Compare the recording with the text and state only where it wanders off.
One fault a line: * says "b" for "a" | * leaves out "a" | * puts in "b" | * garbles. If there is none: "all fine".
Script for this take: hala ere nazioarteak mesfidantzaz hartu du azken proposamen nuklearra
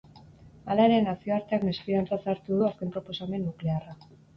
all fine